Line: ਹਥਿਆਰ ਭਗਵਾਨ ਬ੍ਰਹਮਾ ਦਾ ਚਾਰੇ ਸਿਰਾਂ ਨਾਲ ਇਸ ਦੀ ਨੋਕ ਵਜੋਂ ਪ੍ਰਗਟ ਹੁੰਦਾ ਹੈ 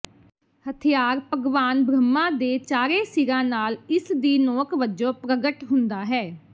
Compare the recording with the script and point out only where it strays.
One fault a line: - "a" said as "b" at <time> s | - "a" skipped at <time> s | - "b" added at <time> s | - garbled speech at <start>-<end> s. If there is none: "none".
- "ਦਾ" said as "ਦੇ" at 2.3 s